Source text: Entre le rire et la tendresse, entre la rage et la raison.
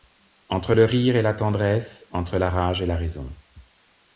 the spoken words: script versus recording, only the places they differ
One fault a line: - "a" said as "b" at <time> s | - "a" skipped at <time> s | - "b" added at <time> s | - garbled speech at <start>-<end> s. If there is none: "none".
none